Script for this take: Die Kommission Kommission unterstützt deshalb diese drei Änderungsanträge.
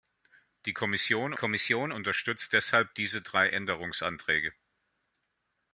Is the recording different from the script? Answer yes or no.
no